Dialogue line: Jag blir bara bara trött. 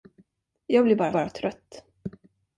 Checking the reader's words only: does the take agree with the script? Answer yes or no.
yes